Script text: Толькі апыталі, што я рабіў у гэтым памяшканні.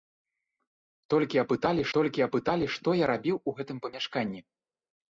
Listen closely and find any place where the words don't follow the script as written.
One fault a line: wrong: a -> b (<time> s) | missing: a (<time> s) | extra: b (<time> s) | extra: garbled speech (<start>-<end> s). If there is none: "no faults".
extra: толькі апыталі (2.0 s)